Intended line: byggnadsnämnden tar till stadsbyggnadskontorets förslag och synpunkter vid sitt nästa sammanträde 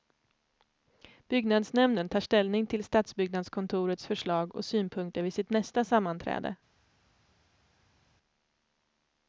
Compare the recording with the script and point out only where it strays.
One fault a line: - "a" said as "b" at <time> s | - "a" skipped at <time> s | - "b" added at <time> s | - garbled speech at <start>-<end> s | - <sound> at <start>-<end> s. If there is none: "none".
- "ställning" added at 2.2 s